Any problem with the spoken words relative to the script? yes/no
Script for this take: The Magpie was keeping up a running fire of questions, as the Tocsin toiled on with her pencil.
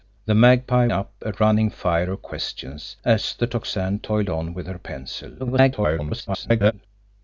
yes